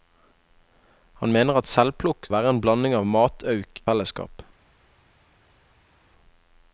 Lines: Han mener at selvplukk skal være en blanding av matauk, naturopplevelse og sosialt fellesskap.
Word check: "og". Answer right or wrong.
wrong